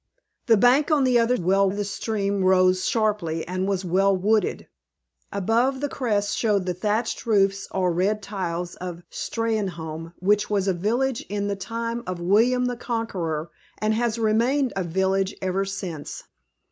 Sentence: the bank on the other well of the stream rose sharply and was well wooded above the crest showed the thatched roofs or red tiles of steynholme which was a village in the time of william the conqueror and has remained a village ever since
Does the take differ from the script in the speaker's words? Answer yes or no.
no